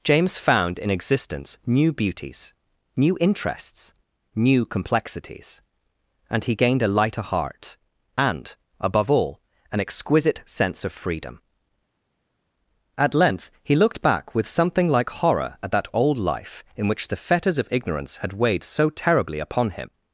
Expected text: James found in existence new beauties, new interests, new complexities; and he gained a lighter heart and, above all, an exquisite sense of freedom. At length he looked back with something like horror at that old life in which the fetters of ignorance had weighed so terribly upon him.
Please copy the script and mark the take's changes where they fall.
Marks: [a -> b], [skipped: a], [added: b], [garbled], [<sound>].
James found in existence new beauties, new interests, new complexities; and he gained a lighter heart and, above all, an exquisite sense of freedom. At length he looked back with something like horror at that old life in which the fetters of ignorance had weighed so terribly upon him.